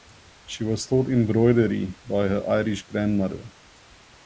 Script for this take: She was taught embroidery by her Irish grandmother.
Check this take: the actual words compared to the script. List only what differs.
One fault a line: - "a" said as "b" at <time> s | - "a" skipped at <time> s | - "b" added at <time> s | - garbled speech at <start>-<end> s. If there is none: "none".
none